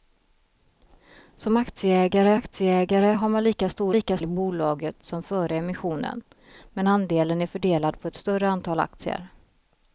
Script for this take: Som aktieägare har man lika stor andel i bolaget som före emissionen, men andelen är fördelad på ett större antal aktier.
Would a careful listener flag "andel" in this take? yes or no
yes